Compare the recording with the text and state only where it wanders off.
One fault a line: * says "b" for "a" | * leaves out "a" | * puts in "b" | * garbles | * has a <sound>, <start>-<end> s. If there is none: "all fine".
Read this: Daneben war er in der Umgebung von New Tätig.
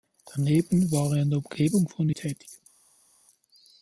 all fine